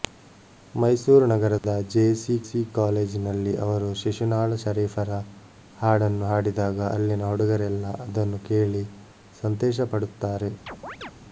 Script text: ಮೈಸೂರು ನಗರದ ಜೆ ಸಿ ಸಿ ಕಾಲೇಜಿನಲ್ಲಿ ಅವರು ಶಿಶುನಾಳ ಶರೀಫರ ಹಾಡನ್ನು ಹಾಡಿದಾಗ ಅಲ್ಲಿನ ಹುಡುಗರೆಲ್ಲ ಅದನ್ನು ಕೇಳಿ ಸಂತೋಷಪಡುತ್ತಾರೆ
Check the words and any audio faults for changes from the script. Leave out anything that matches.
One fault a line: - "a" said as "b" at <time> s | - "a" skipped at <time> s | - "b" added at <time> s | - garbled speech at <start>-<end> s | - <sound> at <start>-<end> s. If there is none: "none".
- dropout at 1.6-1.6 s
- chirp at 10.7-11.1 s